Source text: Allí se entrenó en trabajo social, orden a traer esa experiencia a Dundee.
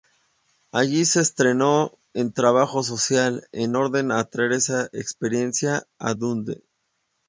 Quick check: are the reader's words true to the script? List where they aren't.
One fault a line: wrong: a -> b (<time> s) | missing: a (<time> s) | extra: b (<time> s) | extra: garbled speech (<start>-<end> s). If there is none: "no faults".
extra: en (3.5 s)